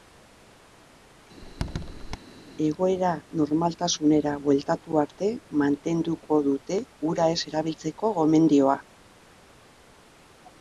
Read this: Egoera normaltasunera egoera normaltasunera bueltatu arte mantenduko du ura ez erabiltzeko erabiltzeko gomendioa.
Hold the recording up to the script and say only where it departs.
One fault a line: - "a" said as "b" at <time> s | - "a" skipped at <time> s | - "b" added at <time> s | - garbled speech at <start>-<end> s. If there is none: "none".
- "egoera normaltasunera" skipped at 4.3 s
- "du" said as "dute" at 6.5 s
- "erabiltzeko" skipped at 8.1 s